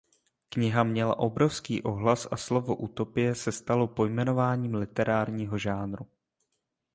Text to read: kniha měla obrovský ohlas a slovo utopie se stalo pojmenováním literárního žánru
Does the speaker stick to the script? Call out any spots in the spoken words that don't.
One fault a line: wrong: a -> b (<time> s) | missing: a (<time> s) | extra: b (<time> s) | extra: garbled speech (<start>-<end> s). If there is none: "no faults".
no faults